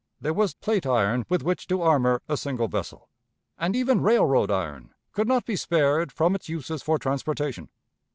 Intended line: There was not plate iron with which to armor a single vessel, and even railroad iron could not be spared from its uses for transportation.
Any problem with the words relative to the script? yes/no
yes